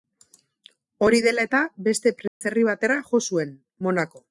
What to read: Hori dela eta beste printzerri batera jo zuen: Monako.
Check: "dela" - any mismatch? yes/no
no